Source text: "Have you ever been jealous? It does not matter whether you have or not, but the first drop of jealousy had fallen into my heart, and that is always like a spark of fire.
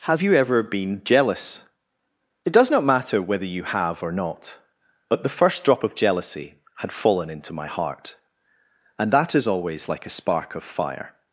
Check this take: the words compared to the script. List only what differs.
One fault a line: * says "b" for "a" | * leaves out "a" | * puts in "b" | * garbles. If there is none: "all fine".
all fine